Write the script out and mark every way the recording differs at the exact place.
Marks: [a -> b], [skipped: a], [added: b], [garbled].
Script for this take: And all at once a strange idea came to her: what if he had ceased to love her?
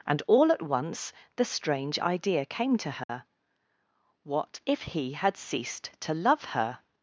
And all at once [a -> the] strange idea came to her: what if he had ceased to love her?